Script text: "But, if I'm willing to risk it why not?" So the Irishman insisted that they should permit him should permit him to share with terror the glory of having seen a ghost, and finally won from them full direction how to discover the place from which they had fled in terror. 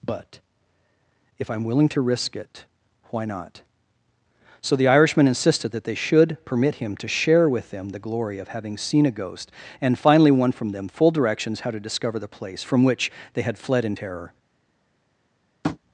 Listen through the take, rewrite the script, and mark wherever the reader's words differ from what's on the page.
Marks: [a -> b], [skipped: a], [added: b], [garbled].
"But, if I'm willing to risk it why not?" So the Irishman insisted that they should permit him [skipped: should permit him] to share with [terror -> them] the glory of having seen a ghost, and finally won from them full [direction -> directions] how to discover the place from which they had fled in terror.